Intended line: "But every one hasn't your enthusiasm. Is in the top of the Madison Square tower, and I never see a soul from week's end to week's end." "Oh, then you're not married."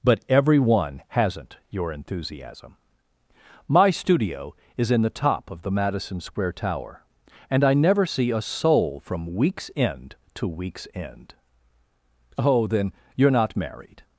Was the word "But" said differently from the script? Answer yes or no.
no